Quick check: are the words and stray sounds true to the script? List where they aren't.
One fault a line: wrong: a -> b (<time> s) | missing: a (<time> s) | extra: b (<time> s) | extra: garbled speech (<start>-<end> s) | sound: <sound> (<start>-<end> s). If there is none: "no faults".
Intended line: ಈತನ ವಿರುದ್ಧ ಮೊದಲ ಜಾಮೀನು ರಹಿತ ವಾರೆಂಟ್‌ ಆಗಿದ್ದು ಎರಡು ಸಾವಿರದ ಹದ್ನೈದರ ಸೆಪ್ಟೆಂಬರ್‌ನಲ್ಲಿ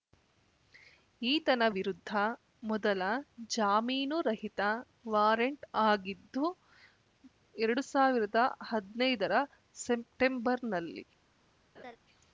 sound: laugh (11.7-12.0 s)